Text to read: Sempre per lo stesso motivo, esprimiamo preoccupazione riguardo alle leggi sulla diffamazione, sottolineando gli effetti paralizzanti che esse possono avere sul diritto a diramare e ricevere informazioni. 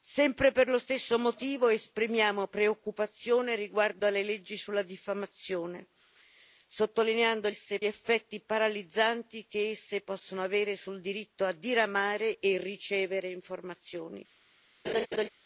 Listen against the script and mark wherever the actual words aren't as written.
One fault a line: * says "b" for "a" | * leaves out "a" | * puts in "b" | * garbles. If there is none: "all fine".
* says "esse" for "gli"